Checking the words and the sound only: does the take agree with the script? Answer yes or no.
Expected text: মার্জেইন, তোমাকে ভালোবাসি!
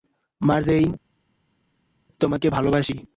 yes